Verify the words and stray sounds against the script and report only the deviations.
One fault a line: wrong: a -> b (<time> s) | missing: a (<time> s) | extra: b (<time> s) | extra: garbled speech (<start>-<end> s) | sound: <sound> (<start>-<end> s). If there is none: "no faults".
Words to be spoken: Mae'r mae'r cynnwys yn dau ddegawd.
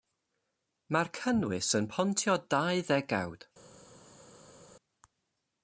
missing: mae'r (1.1 s)
extra: pontio (1.9 s)